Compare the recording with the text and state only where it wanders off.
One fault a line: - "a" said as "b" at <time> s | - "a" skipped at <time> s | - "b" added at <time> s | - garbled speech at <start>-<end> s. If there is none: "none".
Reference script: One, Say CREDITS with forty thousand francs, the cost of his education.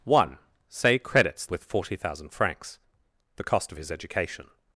none